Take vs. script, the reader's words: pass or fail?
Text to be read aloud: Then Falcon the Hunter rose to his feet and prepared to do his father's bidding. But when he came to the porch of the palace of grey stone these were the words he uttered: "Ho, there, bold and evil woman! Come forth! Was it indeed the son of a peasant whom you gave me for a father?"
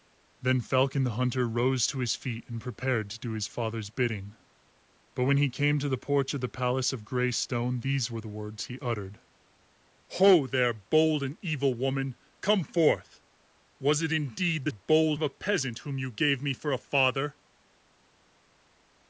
fail